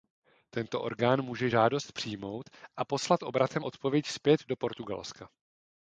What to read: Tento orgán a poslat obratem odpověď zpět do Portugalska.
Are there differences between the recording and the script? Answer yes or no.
yes